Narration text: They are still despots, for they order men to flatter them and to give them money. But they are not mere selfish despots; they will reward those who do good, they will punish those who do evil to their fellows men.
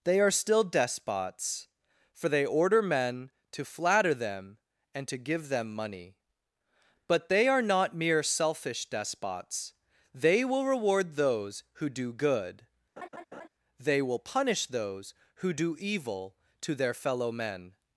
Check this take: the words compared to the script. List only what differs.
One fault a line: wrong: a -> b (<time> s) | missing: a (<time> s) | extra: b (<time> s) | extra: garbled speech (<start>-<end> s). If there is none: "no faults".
wrong: fellows -> fellow (16.9 s)